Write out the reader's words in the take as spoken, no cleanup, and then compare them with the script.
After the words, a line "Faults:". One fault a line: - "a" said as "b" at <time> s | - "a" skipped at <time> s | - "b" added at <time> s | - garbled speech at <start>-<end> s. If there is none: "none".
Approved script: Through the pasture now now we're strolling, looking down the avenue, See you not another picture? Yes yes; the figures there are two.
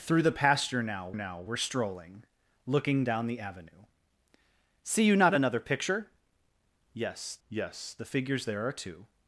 Through the pasture now now we're strolling, looking down the avenue, See you not another picture? Yes yes; the figures there are two.
Faults:
none